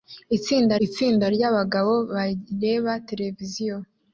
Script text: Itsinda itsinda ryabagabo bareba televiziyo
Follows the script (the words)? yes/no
yes